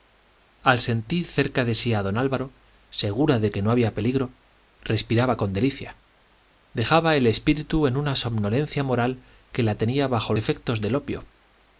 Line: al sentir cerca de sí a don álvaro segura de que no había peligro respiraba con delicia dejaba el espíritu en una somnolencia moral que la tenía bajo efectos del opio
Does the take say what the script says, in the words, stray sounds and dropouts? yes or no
yes